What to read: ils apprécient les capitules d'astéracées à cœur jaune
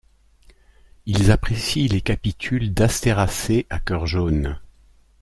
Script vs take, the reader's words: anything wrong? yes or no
no